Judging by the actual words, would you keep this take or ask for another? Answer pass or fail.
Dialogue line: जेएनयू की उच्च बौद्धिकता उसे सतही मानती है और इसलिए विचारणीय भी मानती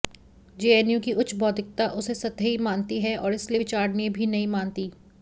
fail